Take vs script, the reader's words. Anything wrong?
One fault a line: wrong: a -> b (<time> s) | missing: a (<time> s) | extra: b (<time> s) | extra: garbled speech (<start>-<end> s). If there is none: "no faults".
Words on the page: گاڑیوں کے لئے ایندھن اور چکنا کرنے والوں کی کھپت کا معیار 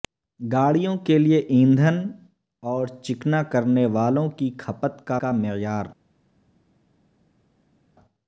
extra: کا (5.2 s)